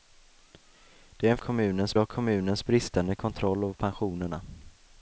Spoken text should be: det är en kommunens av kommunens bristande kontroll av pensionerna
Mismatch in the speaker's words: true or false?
false